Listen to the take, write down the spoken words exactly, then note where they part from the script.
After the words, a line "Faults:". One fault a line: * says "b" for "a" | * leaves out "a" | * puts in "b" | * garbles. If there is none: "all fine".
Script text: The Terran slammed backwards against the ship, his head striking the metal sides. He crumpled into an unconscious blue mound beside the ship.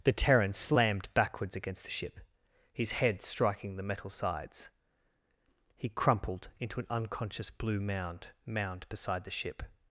The Terran slammed backwards against the ship, his head striking the metal sides. He crumpled into an unconscious blue mound mound beside the ship.
Faults:
* puts in "mound"